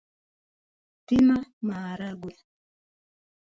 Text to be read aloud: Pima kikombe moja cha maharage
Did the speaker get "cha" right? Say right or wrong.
wrong